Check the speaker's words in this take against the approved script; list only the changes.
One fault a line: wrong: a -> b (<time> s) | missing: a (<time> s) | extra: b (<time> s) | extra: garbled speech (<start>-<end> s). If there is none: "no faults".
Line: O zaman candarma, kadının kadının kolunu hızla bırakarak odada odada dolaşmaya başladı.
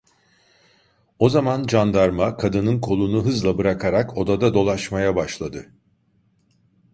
missing: kadının (2.8 s)
missing: odada (4.5 s)